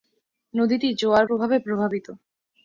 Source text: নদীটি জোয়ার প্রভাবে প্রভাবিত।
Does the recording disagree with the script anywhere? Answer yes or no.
no